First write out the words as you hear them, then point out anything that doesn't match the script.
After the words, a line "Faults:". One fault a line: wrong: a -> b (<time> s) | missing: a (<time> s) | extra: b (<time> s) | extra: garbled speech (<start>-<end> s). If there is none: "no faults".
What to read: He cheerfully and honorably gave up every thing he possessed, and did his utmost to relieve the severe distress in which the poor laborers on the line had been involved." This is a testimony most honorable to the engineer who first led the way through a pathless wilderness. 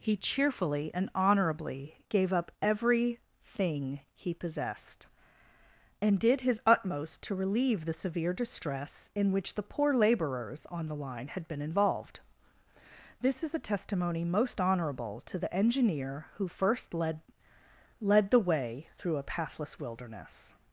He cheerfully and honorably gave up every thing he possessed, and did his utmost to relieve the severe distress in which the poor laborers on the line had been involved." This is a testimony most honorable to the engineer who first led led the way through a pathless wilderness.
Faults:
extra: led (18.0 s)